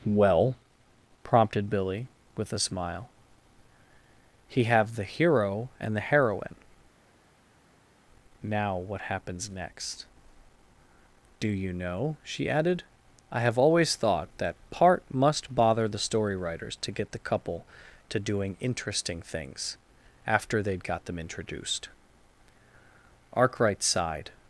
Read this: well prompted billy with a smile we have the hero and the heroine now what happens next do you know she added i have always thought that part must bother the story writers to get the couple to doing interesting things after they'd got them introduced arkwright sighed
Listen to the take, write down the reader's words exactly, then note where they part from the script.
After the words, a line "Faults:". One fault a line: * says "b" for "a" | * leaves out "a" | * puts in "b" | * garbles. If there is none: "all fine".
well prompted billy with a smile he have the hero and the heroine now what happens next do you know she added i have always thought that part must bother the story writers to get the couple to doing interesting things after they'd got them introduced arkwright sighed
Faults:
* says "he" for "we"